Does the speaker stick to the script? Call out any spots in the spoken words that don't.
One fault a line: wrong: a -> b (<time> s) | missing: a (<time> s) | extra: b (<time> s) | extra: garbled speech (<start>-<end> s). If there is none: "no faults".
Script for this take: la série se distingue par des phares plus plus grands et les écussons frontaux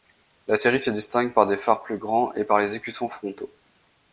missing: plus (2.0 s)
extra: par (2.4 s)